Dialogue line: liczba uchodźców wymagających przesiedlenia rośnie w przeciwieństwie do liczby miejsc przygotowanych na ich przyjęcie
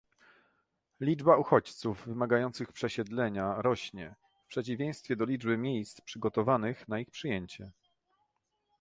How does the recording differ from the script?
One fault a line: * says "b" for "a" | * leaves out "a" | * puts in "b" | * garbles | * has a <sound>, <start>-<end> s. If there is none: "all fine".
all fine